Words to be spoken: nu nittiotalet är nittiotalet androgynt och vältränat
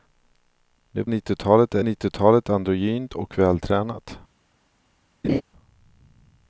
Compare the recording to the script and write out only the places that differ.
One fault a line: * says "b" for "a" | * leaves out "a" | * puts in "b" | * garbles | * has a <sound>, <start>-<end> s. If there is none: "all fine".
* has a laugh, 5.2-5.4 s